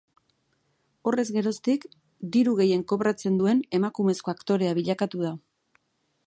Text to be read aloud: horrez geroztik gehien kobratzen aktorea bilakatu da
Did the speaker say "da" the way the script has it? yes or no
yes